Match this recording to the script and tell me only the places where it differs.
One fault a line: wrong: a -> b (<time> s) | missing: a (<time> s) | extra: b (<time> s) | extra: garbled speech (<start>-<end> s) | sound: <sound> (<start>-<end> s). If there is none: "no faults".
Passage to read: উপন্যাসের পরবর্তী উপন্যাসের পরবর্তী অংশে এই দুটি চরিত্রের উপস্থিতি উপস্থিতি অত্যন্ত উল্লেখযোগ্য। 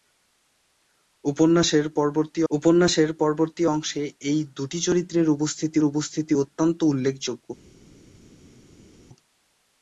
no faults